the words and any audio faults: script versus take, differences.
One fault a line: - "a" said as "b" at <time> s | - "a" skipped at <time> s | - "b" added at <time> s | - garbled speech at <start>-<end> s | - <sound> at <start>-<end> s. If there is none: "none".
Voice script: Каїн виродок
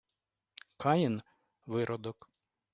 none